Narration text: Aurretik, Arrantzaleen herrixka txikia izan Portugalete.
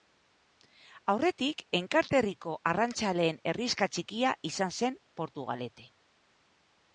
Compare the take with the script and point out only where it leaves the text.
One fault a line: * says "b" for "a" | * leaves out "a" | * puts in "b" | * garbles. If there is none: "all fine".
* puts in "Enkarterriko"
* puts in "zen"